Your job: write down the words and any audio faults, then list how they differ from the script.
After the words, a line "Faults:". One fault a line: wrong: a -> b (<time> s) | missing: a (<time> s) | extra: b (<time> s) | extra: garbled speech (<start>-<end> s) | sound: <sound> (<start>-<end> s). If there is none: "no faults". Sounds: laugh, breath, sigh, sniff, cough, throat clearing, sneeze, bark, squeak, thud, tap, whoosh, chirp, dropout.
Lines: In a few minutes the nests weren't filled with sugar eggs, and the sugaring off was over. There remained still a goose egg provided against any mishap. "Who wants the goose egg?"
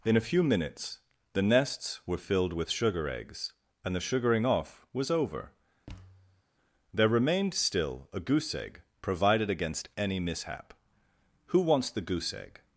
In a few minutes the nests were filled with sugar eggs, and the sugaring off was over. There remained still a goose egg provided against any mishap. "Who wants the goose egg?"
Faults:
wrong: weren't -> were (2.1 s)
sound: thud (5.9-6.4 s)